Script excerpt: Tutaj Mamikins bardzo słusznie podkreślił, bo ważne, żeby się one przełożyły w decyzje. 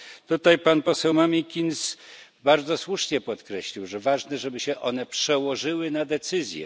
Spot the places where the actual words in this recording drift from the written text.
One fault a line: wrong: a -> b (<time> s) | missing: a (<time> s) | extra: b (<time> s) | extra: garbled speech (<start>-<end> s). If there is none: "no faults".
extra: pan poseł (0.6 s)
wrong: bo -> że (3.9 s)
wrong: w -> na (5.9 s)